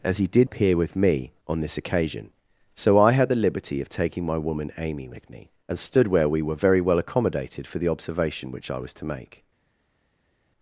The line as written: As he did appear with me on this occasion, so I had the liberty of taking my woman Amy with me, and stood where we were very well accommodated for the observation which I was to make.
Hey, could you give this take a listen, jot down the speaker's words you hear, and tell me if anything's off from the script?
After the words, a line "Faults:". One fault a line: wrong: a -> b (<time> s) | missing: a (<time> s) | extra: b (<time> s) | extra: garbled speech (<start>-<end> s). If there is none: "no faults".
As he did appear with me on this occasion, so I had the liberty of taking my woman Amy with me, and stood where we were very well accommodated for the observation which I was to make.
Faults:
no faults